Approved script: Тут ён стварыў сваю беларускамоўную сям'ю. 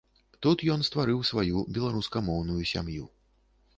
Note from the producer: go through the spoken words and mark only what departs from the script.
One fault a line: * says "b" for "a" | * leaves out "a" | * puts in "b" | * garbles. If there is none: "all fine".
all fine